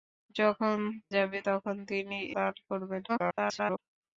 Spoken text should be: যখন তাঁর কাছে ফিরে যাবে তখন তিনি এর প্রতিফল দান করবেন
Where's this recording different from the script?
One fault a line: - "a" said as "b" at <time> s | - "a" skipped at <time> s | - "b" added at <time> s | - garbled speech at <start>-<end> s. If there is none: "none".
- "তাঁর কাছে ফিরে" skipped at 0.8 s
- "এর প্রতিফল" skipped at 2.2 s
- garbled speech at 3.1-3.8 s